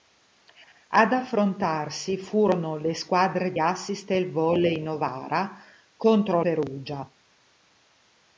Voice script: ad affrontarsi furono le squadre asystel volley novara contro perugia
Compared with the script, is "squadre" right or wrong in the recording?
right